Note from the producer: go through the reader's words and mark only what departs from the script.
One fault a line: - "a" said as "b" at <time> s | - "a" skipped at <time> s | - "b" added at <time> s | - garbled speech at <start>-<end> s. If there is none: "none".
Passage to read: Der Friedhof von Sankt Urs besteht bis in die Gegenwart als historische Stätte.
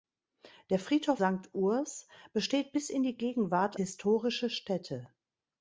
- "von" skipped at 1.2 s
- "als" skipped at 3.8 s